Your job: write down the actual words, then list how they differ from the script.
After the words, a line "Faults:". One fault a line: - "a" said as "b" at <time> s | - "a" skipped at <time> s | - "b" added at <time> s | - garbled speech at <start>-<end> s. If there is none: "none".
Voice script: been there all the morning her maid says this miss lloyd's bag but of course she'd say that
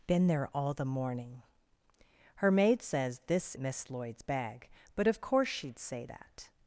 been there all the morning her maid says this miss lloyd's bag but of course she'd say that
Faults:
none